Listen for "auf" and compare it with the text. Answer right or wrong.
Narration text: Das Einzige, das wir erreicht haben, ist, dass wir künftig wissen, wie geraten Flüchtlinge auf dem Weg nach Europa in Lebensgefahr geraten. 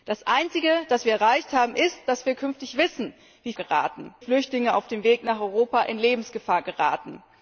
right